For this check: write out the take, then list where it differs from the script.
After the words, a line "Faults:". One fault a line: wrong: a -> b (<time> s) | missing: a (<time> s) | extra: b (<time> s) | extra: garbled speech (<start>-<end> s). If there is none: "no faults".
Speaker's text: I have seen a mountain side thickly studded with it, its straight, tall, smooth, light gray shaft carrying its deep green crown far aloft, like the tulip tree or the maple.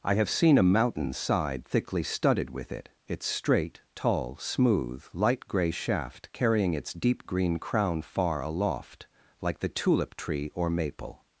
I have seen a mountain side thickly studded with it, its straight, tall, smooth, light gray shaft carrying its deep green crown far aloft, like the tulip tree or maple.
Faults:
missing: the (10.7 s)